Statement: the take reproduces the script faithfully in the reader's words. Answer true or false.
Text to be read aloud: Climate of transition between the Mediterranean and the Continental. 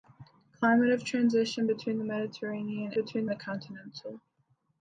false